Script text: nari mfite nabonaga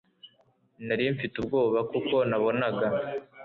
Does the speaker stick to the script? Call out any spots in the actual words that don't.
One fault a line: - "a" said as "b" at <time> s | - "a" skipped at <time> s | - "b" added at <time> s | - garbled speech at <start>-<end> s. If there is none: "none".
- "ubwoba kuko" added at 1.4 s